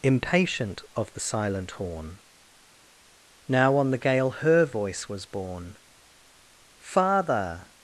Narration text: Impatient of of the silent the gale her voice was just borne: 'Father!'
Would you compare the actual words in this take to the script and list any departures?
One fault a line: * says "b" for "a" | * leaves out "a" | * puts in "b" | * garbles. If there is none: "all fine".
* leaves out "of"
* puts in "horn Now on"
* leaves out "just"